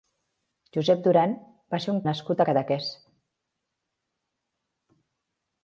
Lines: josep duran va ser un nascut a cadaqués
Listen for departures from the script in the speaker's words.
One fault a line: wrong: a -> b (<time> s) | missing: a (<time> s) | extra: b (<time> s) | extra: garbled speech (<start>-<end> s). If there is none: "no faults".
no faults